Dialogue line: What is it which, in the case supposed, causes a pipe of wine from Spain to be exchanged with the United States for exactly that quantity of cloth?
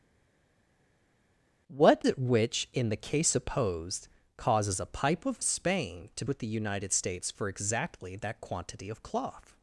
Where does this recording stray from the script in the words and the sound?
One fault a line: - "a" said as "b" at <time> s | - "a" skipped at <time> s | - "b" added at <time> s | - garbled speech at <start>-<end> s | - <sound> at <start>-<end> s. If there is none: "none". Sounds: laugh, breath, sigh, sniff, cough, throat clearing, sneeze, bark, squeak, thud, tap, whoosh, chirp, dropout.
- "is" skipped at 2.0 s
- "wine from" skipped at 5.4 s
- "be exchanged" skipped at 6.2 s